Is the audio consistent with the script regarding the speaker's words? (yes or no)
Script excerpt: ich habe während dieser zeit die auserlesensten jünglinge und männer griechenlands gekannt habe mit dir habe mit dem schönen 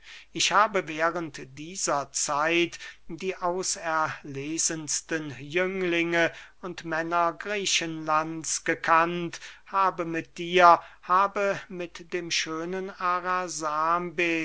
yes